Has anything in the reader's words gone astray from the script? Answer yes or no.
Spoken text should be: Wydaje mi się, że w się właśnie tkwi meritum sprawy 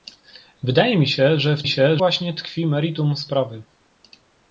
no